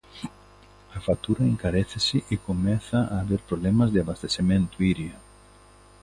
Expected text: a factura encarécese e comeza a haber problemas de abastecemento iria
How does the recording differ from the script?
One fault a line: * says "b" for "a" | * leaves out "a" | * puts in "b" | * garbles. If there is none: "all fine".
all fine